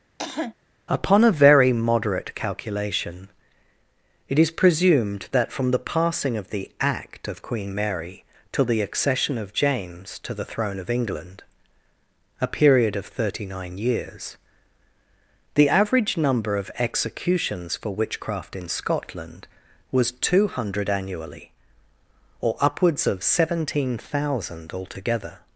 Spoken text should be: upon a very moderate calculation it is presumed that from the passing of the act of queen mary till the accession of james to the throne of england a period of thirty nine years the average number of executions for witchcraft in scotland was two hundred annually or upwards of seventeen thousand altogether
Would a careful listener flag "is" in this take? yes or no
no